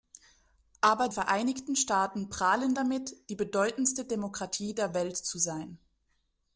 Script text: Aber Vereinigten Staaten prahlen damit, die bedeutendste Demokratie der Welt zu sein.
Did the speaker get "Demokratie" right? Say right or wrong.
right